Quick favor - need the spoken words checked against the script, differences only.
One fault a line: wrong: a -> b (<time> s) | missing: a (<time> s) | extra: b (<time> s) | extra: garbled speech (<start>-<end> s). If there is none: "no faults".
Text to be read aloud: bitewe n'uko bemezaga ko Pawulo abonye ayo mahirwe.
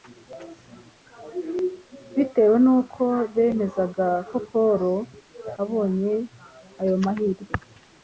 no faults